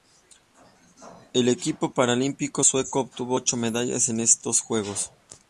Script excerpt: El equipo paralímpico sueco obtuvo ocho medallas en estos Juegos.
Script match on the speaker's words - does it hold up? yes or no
yes